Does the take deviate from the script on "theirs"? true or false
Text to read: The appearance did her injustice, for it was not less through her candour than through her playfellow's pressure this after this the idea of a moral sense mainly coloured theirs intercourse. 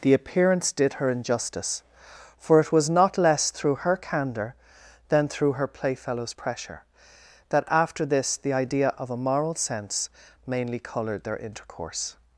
true